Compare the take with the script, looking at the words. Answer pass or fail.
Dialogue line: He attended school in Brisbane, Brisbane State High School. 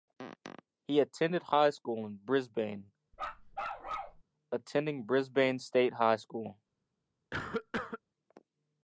fail